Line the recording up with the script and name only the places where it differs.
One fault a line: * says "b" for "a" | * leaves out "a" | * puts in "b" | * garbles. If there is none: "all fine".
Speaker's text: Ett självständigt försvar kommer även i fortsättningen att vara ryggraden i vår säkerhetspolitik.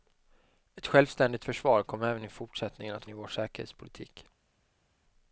* leaves out "vara ryggraden"